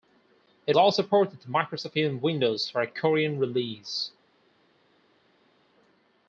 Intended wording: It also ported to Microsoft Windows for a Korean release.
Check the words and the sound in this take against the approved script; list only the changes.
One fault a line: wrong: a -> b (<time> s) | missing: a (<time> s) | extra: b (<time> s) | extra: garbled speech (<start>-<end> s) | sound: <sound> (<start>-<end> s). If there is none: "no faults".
no faults